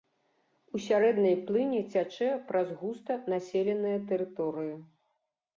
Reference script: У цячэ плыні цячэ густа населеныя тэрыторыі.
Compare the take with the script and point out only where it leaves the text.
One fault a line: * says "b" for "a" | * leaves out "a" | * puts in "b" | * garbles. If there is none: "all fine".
* says "сярэдняй" for "цячэ"
* puts in "праз"